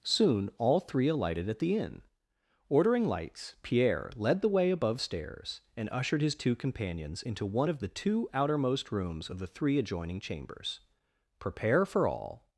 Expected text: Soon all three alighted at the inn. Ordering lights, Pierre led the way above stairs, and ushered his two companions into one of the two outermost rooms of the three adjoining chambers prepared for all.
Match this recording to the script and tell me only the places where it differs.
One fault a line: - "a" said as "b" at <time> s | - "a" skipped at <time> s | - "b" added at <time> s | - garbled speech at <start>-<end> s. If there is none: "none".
- "prepared" said as "prepare" at 11.4 s